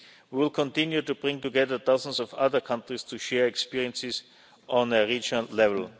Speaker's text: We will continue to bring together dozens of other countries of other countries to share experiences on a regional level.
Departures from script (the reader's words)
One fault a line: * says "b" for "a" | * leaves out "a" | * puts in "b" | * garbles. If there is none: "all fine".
* leaves out "of other countries"